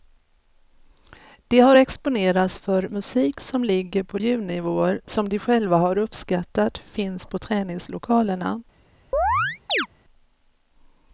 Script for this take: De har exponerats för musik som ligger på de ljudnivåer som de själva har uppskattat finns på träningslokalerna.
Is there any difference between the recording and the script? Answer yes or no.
yes